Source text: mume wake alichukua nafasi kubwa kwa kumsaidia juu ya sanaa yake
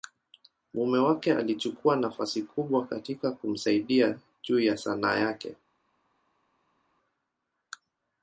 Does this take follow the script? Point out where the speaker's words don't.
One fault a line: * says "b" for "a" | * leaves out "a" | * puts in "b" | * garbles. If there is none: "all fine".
* says "katika" for "kwa"